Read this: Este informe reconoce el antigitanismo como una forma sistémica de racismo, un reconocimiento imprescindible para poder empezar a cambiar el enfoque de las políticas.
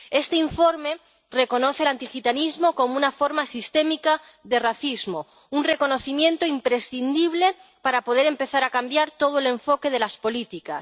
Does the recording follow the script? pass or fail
fail